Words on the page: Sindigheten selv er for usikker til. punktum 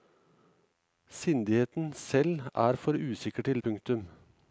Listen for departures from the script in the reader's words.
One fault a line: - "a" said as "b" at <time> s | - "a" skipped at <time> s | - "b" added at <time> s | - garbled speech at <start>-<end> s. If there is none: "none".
none